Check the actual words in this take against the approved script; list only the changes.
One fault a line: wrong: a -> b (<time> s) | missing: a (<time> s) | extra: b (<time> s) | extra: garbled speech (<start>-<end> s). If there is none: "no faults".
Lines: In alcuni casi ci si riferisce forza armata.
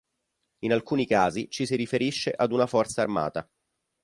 extra: ad una (2.3 s)